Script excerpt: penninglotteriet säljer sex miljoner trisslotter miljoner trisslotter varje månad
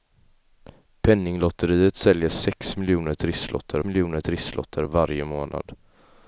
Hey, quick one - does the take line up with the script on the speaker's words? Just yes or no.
yes